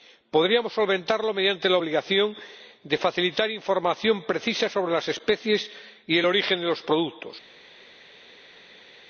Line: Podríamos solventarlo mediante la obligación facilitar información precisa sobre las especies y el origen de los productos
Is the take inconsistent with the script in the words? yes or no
yes